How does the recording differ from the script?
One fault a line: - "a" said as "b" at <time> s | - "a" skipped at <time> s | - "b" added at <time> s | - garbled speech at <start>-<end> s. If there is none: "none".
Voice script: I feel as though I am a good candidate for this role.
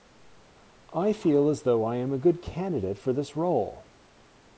none